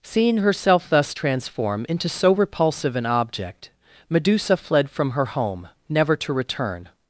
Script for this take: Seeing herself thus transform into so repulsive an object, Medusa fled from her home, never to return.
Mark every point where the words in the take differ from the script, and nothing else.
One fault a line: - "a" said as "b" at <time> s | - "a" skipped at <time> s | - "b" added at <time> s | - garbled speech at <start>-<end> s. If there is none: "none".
none